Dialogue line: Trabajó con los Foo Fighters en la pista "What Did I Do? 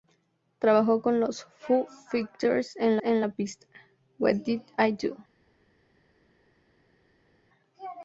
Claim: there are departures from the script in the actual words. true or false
true